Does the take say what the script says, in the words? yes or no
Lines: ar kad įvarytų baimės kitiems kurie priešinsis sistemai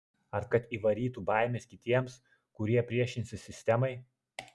yes